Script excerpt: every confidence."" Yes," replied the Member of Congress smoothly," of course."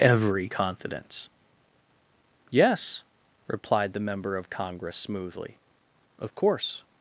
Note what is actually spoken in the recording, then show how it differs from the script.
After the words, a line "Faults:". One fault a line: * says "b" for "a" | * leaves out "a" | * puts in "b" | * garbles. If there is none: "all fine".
every confidence."" Yes," replied the Member of Congress smoothly," of course."
Faults:
all fine